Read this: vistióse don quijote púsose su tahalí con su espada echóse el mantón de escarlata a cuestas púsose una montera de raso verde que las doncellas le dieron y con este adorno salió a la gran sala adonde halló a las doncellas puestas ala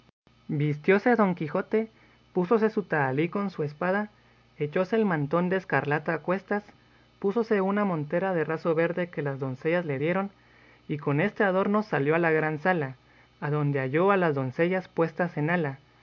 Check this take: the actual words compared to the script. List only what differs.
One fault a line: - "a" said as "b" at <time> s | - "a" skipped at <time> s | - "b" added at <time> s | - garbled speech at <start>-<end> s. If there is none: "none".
- "en" added at 15.4 s